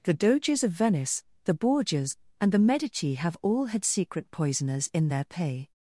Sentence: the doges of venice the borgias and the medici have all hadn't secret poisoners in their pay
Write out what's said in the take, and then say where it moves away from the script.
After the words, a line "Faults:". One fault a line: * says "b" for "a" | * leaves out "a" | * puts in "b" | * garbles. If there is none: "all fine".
the doges of venice the borgias and the medici have all had secret poisoners in their pay
Faults:
* says "had" for "hadn't"